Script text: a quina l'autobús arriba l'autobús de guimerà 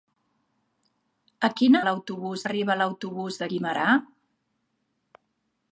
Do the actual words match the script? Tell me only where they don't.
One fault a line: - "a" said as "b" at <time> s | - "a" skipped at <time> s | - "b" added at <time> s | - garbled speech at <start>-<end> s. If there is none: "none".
none